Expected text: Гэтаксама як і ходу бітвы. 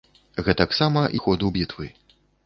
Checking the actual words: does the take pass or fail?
fail